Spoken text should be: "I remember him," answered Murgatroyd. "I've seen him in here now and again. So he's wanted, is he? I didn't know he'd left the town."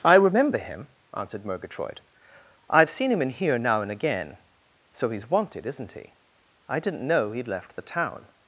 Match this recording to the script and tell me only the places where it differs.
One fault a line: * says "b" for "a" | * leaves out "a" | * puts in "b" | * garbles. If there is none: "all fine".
* says "isn't" for "is"